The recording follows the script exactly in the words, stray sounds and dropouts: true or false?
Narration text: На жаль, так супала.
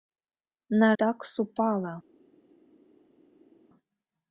false